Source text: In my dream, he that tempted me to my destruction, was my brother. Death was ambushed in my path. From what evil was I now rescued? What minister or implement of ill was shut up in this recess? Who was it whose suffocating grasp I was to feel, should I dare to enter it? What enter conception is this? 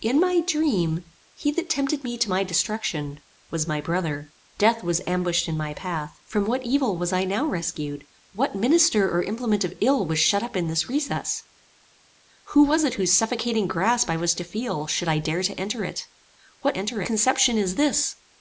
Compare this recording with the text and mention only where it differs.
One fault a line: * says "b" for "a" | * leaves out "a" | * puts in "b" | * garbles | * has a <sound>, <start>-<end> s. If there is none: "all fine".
all fine